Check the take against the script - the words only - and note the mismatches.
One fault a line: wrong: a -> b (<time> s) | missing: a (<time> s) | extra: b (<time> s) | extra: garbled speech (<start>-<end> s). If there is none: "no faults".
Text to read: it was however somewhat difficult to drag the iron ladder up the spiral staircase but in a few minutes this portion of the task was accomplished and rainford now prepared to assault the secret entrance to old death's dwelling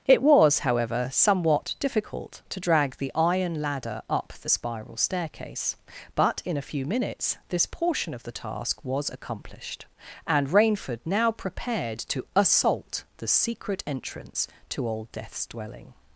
no faults